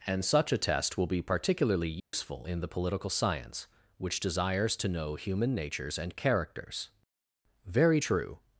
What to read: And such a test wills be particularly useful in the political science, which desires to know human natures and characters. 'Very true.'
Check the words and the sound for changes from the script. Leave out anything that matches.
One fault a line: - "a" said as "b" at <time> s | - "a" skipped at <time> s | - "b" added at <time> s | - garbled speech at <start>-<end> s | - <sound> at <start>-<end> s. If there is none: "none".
- "wills" said as "will" at 1.0 s
- dropout at 2.0-2.1 s